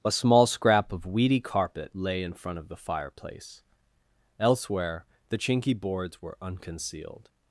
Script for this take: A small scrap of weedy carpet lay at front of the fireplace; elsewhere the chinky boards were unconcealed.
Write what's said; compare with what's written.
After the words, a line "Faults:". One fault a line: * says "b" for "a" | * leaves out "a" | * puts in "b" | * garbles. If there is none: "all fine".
A small scrap of weedy carpet lay in front of the fireplace; elsewhere the chinky boards were unconcealed.
Faults:
* says "in" for "at"